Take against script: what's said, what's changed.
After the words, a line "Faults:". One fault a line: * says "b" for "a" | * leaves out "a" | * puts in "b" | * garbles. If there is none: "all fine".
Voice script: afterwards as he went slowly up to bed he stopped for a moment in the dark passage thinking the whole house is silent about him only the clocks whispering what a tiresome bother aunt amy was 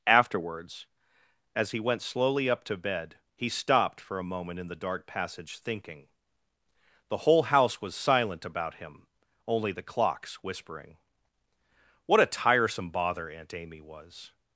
afterwards as he went slowly up to bed he stopped for a moment in the dark passage thinking the whole house was silent about him only the clocks whispering what a tiresome bother aunt amy was
Faults:
* says "was" for "is"